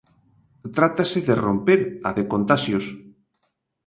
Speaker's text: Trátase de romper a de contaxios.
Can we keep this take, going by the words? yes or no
yes